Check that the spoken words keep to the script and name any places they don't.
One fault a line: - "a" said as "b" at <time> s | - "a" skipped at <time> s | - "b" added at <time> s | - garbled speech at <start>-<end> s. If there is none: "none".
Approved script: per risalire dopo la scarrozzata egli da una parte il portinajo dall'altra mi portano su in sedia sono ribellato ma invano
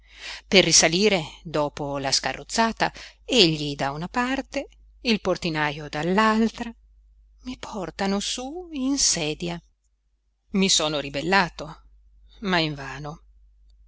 - "i" added at 10.5 s